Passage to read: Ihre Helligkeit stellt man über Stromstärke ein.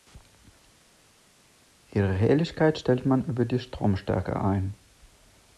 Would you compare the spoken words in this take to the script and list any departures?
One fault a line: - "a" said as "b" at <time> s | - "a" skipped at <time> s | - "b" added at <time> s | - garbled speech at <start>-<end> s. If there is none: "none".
- "die" added at 3.4 s